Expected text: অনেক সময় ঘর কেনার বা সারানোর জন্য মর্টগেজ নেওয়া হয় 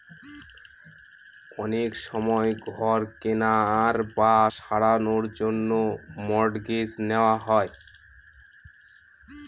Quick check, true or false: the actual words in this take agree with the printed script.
true